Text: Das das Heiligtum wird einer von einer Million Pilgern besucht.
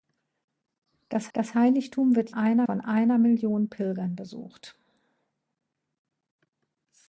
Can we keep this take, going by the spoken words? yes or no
yes